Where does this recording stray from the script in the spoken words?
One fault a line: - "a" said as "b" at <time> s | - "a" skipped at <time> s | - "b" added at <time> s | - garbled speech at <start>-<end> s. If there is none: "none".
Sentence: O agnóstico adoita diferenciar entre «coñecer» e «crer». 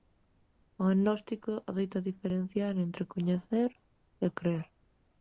none